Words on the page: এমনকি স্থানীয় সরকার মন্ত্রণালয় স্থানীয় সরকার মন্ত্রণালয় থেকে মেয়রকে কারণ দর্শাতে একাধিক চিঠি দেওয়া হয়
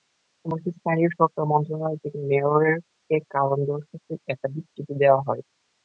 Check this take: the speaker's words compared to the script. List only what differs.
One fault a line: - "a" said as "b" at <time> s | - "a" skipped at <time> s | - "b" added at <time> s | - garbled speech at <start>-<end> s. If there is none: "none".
- "স্থানীয় সরকার মন্ত্রণালয়" skipped at 2.0 s